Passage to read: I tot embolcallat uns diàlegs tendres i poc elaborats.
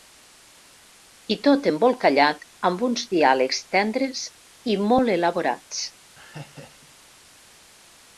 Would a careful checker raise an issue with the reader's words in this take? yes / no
yes